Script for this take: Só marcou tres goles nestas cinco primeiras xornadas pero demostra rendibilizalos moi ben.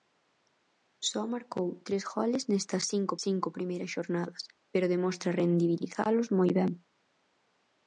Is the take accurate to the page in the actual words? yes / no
no